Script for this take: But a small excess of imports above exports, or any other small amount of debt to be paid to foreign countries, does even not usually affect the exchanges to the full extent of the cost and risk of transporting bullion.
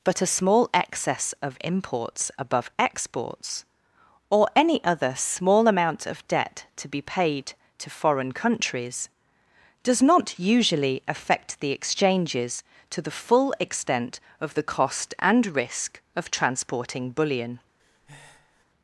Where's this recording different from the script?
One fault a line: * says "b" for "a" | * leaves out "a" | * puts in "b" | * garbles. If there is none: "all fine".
* leaves out "even"